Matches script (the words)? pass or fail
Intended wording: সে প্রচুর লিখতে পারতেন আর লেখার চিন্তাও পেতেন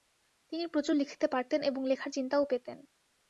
fail